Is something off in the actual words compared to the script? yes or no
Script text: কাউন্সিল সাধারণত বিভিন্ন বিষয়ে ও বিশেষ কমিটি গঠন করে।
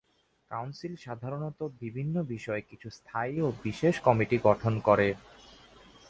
yes